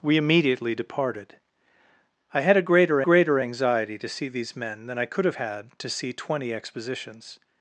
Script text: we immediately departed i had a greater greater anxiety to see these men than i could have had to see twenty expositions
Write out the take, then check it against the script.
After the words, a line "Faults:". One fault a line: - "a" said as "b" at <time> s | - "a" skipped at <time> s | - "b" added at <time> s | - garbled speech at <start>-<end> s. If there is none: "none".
we immediately departed i had a greater greater anxiety to see these men than i could have had to see twenty expositions
Faults:
none